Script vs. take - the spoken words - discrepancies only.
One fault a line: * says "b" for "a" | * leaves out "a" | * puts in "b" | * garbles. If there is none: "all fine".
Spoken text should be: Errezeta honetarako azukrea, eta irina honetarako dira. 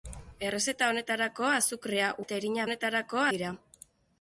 all fine